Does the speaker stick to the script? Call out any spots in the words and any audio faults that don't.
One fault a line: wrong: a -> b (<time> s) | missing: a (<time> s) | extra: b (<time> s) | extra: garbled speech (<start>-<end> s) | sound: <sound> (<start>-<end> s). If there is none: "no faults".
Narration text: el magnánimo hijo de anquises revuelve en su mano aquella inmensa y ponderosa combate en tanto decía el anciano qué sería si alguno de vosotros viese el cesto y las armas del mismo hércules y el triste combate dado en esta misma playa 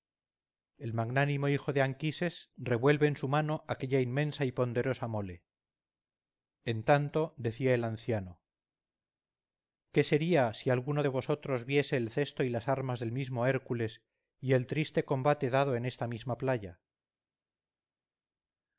wrong: combate -> mole (5.1 s)